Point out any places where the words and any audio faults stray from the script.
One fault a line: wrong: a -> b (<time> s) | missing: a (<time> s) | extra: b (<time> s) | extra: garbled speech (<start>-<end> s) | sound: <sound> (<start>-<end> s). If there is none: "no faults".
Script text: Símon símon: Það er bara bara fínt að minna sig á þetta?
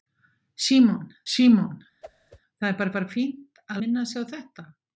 sound: whoosh (2.0-2.4 s)